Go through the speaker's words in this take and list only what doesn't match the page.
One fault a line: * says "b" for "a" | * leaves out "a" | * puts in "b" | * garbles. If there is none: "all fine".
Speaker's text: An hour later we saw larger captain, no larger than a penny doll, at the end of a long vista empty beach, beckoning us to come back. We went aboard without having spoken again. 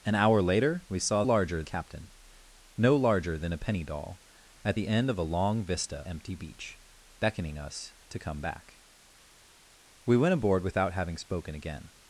all fine